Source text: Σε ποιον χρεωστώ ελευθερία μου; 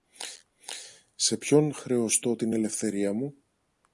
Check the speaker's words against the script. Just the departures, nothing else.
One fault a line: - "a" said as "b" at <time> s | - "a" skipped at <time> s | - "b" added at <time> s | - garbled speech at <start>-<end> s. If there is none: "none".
- "την" added at 2.3 s